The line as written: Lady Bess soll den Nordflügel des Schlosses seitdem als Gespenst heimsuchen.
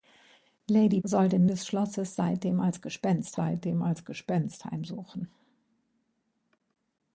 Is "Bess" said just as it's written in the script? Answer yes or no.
no